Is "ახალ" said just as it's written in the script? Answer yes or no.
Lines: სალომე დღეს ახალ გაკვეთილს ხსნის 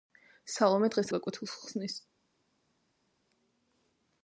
no